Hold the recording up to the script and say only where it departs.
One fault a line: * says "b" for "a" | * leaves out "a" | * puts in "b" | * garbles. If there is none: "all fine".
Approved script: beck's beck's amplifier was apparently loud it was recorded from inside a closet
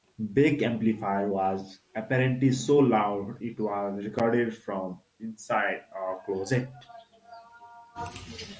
* leaves out "beck's"
* puts in "so"